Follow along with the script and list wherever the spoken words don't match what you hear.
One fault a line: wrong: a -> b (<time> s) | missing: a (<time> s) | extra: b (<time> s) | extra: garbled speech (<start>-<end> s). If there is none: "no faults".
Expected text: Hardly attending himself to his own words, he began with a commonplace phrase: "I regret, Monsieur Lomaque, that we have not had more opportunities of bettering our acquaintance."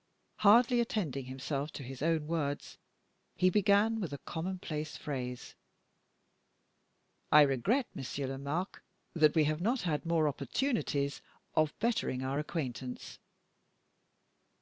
no faults